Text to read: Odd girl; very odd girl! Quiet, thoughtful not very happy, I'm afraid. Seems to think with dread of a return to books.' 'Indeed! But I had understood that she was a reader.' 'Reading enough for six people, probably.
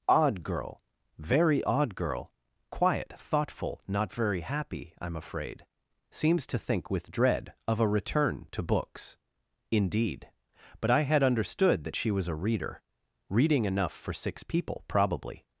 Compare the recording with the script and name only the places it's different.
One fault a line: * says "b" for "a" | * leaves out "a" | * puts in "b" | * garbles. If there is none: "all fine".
all fine